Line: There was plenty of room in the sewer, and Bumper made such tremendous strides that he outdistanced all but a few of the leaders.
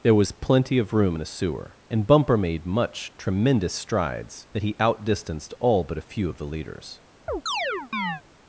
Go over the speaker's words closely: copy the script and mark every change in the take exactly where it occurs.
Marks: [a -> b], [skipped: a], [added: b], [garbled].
There was plenty of room in [the -> a] sewer, and Bumper made [such -> much] tremendous strides that he outdistanced all but a few of the leaders.